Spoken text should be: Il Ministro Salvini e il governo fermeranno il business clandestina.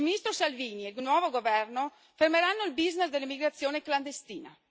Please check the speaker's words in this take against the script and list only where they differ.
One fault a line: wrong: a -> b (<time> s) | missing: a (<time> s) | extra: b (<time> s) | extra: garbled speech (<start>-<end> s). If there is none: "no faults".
extra: nuovo (1.0 s)
extra: dell'immigrazione (3.1 s)